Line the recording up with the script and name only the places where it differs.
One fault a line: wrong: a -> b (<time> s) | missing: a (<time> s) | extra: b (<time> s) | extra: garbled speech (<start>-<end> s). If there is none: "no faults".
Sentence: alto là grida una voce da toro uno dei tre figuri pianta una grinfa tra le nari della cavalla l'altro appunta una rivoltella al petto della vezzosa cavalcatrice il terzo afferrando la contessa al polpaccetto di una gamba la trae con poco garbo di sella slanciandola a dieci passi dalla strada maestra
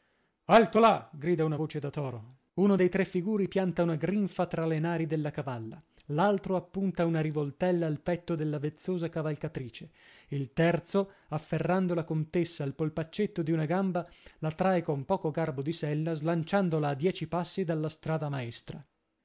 no faults